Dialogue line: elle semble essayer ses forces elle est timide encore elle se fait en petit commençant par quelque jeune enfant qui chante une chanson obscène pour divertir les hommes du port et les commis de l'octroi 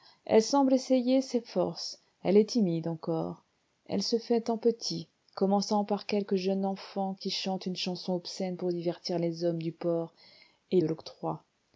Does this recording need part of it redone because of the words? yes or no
yes